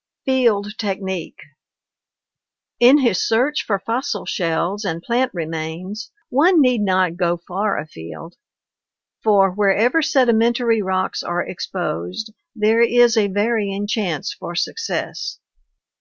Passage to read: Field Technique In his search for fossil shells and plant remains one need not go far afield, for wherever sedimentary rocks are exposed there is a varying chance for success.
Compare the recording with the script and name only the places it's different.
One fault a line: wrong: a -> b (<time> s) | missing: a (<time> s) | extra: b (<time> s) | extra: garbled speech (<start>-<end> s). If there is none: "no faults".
no faults